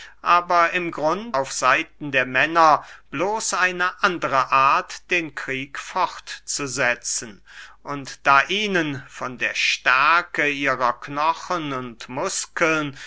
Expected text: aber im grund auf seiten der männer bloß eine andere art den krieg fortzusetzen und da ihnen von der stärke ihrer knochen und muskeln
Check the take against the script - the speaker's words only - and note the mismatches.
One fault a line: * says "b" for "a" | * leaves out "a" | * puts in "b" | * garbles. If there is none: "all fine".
all fine